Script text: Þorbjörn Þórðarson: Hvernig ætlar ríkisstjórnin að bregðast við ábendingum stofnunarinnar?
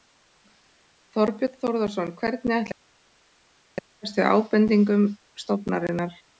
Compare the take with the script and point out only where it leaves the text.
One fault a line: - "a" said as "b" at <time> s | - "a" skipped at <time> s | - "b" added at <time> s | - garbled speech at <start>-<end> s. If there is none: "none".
none